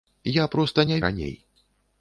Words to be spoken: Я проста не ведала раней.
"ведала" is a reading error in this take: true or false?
true